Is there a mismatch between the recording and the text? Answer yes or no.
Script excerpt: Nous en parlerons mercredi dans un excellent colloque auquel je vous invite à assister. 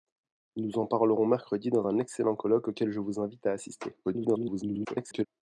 yes